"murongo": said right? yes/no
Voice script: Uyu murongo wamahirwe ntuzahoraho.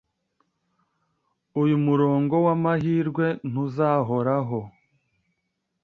yes